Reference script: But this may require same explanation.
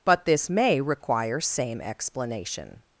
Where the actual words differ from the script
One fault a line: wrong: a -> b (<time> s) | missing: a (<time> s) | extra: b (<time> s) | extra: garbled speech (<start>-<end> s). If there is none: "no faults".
no faults